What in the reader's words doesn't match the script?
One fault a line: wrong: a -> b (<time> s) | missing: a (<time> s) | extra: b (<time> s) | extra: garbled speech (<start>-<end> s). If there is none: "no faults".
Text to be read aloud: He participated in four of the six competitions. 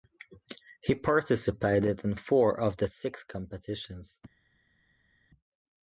no faults